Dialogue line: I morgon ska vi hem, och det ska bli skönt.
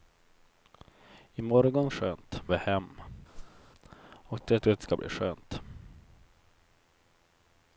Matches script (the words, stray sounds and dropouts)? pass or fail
fail